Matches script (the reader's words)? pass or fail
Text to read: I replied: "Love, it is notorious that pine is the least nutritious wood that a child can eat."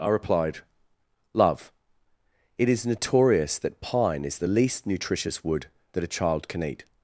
pass